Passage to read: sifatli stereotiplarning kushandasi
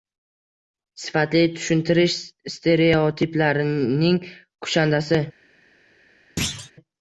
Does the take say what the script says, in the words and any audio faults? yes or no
no